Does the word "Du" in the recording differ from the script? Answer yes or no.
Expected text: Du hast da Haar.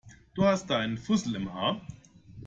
no